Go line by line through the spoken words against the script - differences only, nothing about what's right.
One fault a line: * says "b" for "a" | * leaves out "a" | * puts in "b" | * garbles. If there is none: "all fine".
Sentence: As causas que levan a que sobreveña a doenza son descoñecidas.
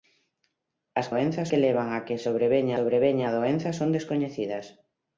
* says "doenza" for "causas"
* puts in "sobreveña"